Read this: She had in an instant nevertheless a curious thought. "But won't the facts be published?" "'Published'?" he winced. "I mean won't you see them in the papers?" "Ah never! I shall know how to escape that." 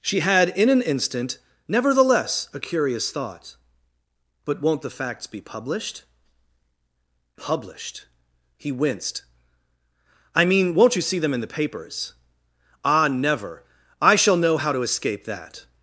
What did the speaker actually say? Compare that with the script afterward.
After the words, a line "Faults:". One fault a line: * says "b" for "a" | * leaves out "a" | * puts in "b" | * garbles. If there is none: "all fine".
She had in an instant nevertheless a curious thought. "But won't the facts be published?" "'Published'?" he winced. "I mean won't you see them in the papers?" "Ah never! I shall know how to escape that."
Faults:
all fine